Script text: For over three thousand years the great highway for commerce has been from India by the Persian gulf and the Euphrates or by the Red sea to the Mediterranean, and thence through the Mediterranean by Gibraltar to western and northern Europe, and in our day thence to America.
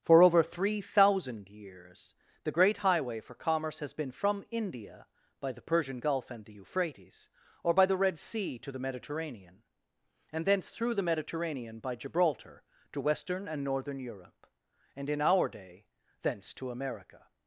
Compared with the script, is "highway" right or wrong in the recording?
right